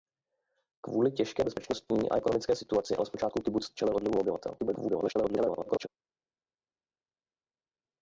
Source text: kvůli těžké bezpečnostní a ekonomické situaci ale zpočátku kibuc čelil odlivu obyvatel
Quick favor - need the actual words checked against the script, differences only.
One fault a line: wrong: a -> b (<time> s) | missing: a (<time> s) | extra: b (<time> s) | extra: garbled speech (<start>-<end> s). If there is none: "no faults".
extra: garbled speech (4.6-5.9 s)